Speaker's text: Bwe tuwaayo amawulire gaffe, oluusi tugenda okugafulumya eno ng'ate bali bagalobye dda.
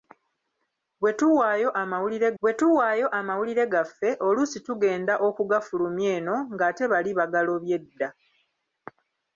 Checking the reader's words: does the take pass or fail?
fail